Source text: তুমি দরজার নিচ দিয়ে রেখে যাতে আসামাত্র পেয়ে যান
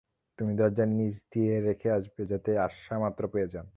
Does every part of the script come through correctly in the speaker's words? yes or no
no